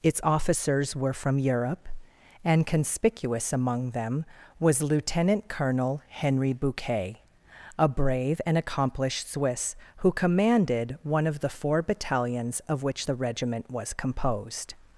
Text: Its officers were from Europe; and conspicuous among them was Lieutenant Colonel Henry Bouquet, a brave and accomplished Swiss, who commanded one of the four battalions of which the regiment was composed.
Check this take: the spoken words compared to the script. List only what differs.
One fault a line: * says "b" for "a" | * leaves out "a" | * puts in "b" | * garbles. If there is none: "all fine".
all fine